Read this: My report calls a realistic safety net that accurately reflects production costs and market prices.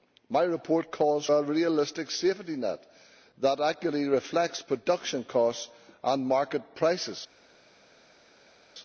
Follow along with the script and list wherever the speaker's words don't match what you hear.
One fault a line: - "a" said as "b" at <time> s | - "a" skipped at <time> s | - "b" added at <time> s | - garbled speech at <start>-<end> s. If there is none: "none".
none